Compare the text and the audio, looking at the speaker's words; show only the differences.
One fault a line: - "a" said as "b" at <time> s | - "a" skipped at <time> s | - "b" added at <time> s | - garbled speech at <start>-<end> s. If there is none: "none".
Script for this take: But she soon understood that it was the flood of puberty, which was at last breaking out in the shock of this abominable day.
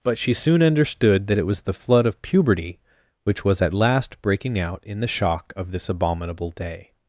none